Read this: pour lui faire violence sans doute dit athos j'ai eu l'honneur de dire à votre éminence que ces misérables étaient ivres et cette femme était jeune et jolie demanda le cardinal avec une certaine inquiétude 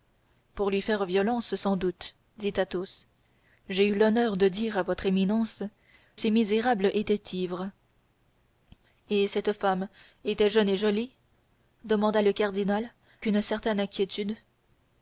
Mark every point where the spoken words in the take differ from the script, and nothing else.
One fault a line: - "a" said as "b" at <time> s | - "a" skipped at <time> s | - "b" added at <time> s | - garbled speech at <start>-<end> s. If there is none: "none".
- "que" skipped at 5.6 s
- "avec" skipped at 12.9 s